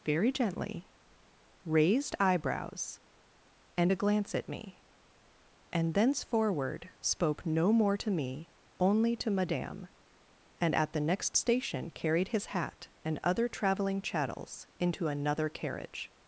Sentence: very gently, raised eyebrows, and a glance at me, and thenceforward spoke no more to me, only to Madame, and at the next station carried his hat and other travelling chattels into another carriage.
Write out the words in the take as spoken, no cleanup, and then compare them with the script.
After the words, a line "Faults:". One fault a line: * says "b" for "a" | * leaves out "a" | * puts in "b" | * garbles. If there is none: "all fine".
very gently, raised eyebrows, and a glance at me, and thenceforward spoke no more to me, only to Madame, and at the next station carried his hat and other travelling chattels into another carriage.
Faults:
all fine